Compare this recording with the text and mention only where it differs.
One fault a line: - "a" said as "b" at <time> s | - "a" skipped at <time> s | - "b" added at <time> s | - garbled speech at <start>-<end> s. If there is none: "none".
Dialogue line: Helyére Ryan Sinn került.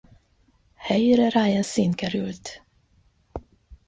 none